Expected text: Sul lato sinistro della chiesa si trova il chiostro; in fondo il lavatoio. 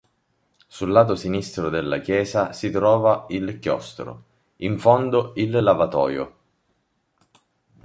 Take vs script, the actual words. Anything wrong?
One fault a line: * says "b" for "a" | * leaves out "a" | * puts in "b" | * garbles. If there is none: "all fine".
all fine